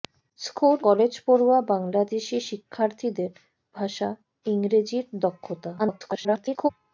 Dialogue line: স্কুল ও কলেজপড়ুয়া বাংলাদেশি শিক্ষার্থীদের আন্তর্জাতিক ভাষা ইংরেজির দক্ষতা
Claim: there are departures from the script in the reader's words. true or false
true